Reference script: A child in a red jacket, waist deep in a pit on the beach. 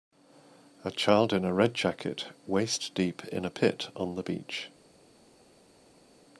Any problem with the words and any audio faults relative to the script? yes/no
no